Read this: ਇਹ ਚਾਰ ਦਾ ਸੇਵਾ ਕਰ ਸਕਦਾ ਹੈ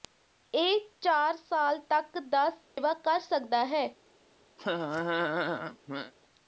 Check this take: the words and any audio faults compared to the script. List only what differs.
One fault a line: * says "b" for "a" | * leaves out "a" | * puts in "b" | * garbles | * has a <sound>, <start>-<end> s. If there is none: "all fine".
* puts in "ਸਾਲ ਤੱਕ"
* has a dropout, 2.6-2.8 s
* has a laugh, 4.6-6.1 s